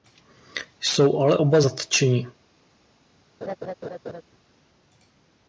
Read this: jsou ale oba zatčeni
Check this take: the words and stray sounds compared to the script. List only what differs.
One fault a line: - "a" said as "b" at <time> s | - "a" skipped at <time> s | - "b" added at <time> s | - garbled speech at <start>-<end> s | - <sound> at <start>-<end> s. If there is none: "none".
- laugh at 3.4-4.2 s